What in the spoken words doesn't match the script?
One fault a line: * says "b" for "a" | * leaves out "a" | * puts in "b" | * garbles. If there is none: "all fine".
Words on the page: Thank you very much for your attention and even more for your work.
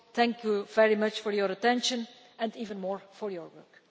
all fine